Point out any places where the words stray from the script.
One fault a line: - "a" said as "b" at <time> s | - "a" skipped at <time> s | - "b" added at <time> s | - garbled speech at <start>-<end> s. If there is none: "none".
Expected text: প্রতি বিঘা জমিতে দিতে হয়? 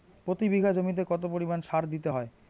- "কত পরিমাণ সার" added at 1.1 s